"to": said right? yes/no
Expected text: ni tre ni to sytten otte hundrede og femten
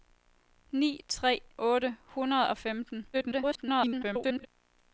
no